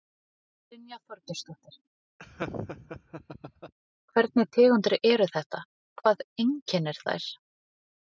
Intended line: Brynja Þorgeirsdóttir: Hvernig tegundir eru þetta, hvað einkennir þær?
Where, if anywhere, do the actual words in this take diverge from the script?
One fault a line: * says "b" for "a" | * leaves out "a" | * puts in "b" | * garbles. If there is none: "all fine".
all fine